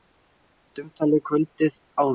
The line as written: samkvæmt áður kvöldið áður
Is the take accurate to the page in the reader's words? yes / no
no